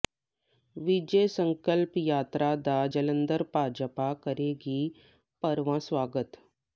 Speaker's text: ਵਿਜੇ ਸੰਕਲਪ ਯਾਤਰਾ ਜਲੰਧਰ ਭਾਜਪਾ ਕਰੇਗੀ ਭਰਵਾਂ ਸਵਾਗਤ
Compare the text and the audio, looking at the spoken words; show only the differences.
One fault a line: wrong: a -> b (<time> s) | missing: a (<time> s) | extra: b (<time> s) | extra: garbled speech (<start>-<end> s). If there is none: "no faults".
extra: ਦਾ (2.6 s)